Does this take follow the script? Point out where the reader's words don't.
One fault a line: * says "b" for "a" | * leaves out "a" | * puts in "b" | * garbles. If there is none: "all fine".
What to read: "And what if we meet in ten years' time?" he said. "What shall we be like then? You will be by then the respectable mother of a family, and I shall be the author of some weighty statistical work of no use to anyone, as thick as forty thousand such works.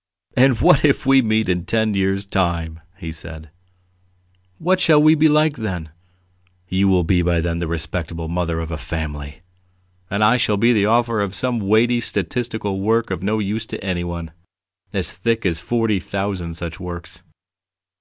all fine